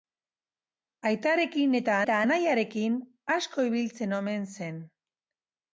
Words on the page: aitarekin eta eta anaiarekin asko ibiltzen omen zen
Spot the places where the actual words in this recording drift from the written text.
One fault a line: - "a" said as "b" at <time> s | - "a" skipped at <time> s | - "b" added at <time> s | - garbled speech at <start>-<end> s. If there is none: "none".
none